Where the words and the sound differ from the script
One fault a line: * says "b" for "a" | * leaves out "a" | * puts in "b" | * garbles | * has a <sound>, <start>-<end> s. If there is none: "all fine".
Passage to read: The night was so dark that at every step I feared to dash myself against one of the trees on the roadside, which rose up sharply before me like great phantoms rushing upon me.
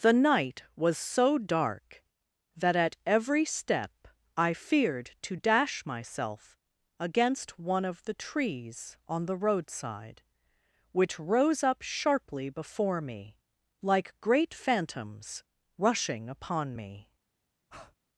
* has a breath, 17.7-18.0 s